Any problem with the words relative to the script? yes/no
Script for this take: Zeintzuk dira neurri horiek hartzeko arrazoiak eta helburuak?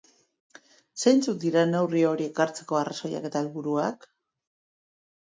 no